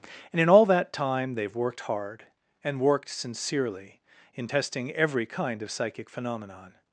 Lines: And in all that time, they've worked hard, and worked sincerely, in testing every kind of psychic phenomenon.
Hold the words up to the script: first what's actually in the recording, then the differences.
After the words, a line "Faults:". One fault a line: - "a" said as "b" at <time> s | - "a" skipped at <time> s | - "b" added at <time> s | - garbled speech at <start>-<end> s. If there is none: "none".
And in all that time, they've worked hard, and worked sincerely, in testing every kind of psychic phenomenon.
Faults:
none